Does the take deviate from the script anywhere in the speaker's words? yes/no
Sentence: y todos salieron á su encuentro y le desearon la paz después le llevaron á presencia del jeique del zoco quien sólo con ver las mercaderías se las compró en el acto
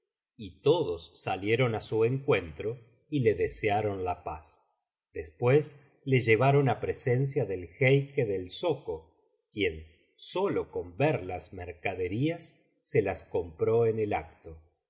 no